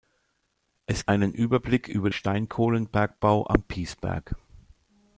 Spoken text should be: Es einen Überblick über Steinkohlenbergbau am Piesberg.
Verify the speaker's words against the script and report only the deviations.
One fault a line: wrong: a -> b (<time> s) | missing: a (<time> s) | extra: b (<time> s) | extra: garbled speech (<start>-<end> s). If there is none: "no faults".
no faults